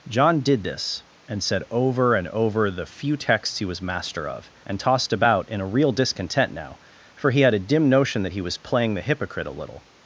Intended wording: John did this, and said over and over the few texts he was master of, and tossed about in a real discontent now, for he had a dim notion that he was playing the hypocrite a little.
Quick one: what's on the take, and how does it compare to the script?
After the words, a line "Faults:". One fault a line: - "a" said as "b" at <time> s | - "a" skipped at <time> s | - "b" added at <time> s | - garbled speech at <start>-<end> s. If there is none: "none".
John did this, and said over and over the few texts he was master of, and tossed about in a real discontent now, for he had a dim notion that he was playing the hypocrite a little.
Faults:
none